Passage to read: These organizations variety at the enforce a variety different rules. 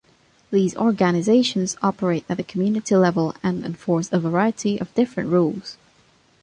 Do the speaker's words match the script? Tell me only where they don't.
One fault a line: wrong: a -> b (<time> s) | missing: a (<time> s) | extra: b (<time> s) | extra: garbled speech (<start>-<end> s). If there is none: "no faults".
wrong: variety -> operate (1.8 s)
extra: community level and (2.4 s)
extra: of (4.8 s)